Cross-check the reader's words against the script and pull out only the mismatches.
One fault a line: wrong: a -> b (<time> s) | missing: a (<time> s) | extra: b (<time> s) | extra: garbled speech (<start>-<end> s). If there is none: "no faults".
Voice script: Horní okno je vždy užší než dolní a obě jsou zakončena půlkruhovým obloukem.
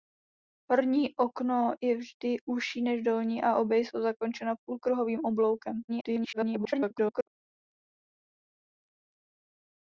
extra: garbled speech (5.9-7.3 s)